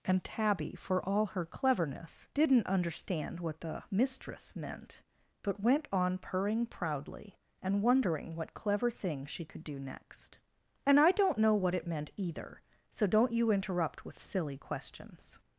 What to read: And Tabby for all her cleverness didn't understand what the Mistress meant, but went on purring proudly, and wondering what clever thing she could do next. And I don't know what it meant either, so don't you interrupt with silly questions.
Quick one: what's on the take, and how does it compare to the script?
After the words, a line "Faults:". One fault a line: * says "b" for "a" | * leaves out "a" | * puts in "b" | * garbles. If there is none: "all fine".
And Tabby for all her cleverness didn't understand what the Mistress meant, but went on purring proudly, and wondering what clever thing she could do next. And I don't know what it meant either, so don't you interrupt with silly questions.
Faults:
all fine